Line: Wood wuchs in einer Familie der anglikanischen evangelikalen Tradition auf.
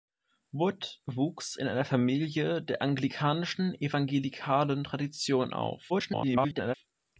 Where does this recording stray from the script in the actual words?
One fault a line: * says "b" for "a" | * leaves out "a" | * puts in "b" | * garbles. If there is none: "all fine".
* garbles